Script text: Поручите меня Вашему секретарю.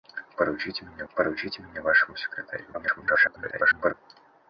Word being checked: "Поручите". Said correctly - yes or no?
yes